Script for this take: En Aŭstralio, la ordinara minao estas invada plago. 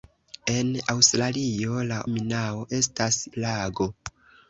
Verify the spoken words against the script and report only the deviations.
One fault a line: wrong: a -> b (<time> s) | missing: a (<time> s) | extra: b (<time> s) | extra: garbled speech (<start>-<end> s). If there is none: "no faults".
missing: ordinara (2.0 s)
missing: invada (3.2 s)